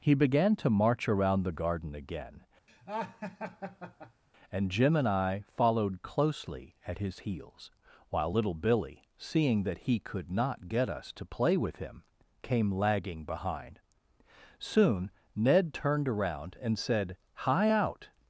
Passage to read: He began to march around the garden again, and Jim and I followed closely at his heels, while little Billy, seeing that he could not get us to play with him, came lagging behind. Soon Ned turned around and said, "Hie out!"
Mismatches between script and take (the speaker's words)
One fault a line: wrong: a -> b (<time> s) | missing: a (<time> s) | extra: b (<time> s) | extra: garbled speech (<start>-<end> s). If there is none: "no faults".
no faults